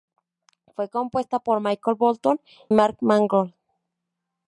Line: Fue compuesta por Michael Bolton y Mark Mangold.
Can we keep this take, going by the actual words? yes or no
no